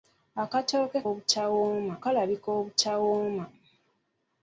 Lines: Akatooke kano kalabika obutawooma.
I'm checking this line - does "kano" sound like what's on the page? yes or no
no